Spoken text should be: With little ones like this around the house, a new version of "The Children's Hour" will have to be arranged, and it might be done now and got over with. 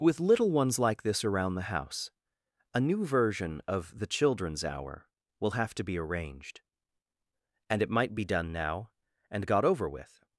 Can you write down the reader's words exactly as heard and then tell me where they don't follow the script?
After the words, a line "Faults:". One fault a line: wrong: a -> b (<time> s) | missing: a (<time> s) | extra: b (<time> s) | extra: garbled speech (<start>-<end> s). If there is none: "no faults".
With little ones like this around the house, a new version of "The Children's Hour" will have to be arranged, and it might be done now and got over with.
Faults:
no faults